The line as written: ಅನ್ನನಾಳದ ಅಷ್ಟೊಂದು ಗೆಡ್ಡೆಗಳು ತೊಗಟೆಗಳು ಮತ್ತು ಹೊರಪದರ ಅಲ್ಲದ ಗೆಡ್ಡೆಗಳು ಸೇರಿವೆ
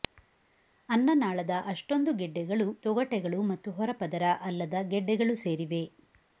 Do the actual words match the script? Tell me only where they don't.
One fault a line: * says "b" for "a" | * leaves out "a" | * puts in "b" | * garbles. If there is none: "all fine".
all fine